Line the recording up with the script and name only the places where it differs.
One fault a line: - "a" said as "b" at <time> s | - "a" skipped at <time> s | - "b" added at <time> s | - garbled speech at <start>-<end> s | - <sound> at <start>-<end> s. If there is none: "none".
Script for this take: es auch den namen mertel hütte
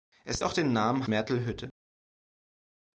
none